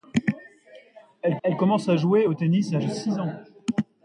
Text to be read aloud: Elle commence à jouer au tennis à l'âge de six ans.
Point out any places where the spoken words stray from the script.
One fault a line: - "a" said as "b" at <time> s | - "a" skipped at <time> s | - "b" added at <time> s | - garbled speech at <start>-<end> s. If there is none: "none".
- "elle" added at 1.4 s
- "l'âge" skipped at 2.8 s